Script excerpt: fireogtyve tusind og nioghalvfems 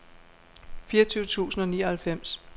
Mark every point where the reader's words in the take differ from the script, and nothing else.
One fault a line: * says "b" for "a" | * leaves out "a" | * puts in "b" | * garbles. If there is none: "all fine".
all fine